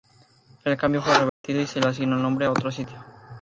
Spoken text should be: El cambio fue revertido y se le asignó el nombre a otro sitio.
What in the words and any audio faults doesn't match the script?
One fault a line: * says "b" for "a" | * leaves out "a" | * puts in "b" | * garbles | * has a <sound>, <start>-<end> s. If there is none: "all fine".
* has a dropout, 1.3-1.4 s